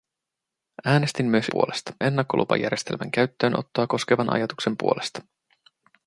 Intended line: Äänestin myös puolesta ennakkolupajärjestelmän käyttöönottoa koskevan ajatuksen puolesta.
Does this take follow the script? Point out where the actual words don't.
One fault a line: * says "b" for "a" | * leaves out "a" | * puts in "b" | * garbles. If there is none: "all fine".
all fine